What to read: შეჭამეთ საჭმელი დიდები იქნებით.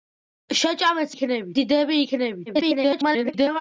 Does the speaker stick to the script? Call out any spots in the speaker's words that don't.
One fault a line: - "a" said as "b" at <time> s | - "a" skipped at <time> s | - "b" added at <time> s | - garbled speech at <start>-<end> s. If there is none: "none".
- "საჭმელი" said as "იქნებით" at 1.1 s
- garbled speech at 2.5-3.6 s